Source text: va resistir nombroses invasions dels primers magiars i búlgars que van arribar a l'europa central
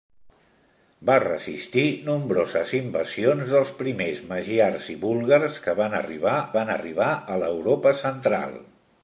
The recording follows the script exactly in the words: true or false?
false